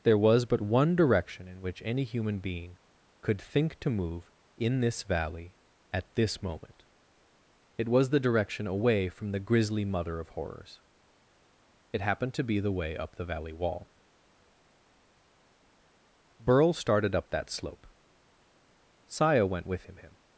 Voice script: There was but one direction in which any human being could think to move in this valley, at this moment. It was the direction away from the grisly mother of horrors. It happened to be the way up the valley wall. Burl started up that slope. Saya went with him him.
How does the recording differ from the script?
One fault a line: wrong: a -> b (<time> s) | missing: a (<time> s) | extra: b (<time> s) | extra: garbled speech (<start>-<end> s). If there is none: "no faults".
no faults